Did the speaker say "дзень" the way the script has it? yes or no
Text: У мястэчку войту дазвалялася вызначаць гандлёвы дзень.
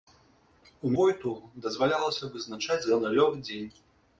yes